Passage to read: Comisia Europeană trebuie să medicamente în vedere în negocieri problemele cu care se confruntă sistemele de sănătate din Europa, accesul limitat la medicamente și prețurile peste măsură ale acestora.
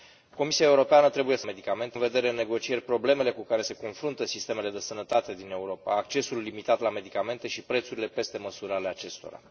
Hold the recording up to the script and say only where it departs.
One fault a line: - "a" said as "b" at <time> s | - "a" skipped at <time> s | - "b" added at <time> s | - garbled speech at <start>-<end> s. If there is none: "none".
none